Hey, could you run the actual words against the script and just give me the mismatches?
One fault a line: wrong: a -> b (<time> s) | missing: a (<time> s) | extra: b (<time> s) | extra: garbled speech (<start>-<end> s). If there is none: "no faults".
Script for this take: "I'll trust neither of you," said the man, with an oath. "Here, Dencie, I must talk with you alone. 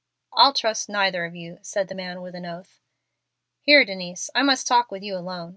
no faults